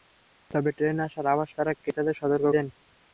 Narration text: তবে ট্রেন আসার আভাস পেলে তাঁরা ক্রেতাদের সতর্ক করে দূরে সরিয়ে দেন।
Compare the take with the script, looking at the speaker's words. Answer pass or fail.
fail